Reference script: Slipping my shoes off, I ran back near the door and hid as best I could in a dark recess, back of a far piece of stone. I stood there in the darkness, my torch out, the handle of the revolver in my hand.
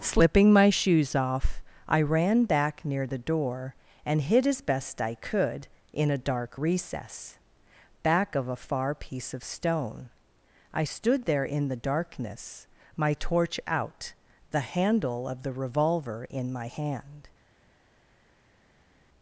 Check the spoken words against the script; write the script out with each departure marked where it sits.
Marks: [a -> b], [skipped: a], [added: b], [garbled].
Slipping my shoes off, I ran back near the door and hid as best I could in a dark recess, back of a far piece of stone. I stood there in the darkness, my torch out, the handle of the revolver in my hand.